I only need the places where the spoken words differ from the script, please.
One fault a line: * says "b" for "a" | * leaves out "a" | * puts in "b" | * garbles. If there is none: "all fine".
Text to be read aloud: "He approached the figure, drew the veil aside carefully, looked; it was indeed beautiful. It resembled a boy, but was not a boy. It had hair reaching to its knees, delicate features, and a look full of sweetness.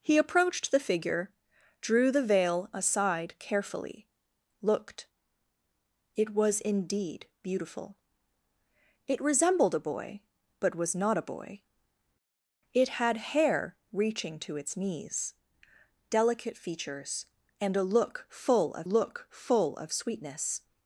* puts in "look full of"